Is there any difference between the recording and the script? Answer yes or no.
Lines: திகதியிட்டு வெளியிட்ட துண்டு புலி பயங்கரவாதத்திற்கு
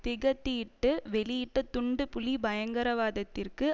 no